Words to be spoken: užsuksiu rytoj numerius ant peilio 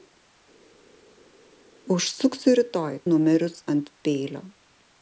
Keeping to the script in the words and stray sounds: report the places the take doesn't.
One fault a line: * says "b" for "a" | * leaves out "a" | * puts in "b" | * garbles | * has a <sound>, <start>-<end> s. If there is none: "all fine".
all fine